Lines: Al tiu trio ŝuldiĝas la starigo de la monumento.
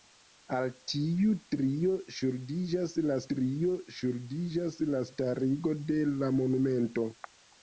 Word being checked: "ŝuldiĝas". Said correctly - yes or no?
yes